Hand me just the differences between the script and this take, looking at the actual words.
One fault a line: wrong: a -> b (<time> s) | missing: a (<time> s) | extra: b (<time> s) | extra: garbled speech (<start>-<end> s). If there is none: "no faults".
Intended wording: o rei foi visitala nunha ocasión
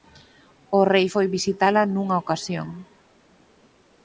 no faults